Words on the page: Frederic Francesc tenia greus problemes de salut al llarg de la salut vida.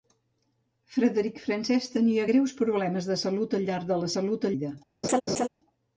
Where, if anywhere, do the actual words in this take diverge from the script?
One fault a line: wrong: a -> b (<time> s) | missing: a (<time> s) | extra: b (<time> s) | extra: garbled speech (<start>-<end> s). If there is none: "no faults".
no faults